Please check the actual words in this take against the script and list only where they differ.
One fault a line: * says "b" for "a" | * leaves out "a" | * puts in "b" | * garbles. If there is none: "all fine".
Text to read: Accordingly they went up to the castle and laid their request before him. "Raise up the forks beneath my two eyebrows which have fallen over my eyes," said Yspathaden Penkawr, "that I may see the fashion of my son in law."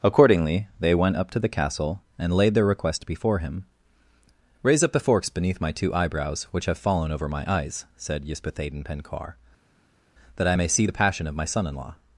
* says "passion" for "fashion"